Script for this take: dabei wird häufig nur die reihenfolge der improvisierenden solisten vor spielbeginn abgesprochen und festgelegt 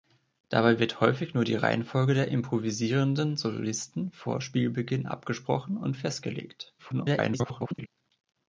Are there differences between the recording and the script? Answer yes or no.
yes